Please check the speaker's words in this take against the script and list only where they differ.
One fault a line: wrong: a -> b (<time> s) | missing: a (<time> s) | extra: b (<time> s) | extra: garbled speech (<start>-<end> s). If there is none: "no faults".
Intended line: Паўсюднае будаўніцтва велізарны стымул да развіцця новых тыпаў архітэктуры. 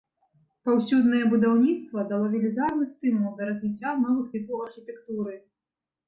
extra: дало (2.1 s)